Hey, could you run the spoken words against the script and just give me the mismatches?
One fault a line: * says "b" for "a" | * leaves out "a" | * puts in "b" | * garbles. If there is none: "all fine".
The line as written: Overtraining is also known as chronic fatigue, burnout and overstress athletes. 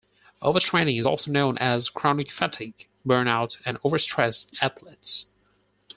all fine